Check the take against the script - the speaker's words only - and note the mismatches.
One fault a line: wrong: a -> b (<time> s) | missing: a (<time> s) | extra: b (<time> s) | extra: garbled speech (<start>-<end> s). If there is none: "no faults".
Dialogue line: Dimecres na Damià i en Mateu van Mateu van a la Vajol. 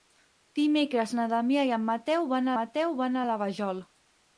no faults